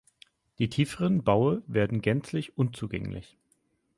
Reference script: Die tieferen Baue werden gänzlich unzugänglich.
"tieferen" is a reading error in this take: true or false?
false